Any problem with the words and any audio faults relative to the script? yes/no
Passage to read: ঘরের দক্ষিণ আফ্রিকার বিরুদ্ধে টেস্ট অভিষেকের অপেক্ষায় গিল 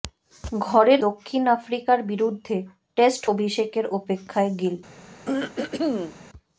yes